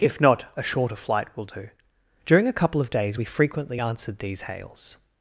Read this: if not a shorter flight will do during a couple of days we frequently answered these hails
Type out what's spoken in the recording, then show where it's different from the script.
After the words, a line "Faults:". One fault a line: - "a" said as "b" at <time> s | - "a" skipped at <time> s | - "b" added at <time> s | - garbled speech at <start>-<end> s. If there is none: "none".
if not a shorter flight will do during a couple of days we frequently answered these hails
Faults:
none